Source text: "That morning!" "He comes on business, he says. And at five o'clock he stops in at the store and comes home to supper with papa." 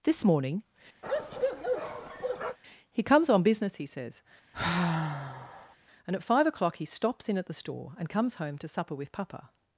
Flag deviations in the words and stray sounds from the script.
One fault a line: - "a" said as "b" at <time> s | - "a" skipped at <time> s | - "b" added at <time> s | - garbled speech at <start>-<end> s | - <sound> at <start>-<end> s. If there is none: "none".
- "That" said as "This" at 0.0 s
- bark at 1.0-2.6 s
- sigh at 4.5-5.8 s